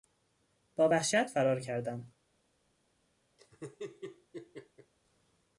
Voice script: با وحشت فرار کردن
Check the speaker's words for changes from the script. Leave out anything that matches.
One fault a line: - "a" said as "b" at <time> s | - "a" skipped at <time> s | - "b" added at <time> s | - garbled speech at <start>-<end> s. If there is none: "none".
none